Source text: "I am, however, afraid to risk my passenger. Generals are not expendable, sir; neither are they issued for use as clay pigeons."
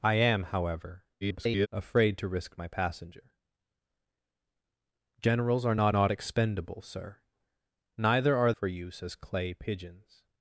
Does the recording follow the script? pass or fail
fail